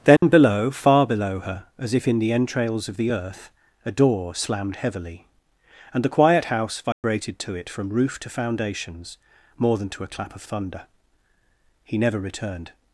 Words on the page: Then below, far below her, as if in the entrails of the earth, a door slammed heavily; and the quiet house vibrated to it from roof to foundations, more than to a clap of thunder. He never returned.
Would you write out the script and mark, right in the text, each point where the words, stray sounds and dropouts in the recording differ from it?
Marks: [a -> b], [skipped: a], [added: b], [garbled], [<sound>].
Then [dropout] below, far below her, as if in the entrails of the earth, a door slammed heavily; and the quiet house vibrated [dropout] to it from roof to foundations, more than to a clap of thunder. He never returned.